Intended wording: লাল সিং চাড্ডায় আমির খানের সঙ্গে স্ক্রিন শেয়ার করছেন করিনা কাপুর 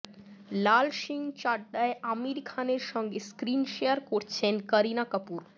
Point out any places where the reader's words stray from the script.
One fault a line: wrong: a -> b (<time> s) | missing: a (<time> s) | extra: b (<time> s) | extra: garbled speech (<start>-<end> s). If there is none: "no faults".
no faults